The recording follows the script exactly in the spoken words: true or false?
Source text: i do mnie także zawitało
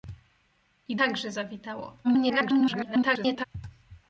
false